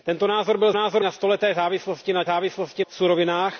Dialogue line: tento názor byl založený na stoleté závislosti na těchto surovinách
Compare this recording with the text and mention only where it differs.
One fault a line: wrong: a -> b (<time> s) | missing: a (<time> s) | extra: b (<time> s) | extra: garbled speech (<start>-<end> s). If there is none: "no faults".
wrong: založený -> názor (0.7 s)
wrong: těchto -> závislosti (2.3 s)